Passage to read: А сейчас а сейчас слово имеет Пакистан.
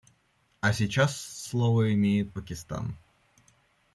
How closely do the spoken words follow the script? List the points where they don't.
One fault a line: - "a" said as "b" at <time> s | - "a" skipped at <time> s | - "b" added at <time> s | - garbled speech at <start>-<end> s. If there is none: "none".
- "а сейчас" skipped at 1.1 s